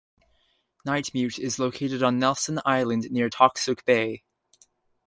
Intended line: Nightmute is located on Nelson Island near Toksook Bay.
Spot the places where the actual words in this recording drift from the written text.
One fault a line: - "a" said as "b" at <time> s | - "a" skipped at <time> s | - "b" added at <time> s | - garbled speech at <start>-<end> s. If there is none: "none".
none